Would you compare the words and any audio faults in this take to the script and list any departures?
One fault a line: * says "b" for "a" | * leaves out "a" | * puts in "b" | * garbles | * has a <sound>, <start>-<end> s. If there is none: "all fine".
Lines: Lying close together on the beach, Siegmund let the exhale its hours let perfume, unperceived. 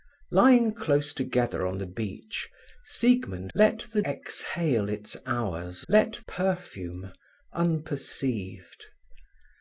all fine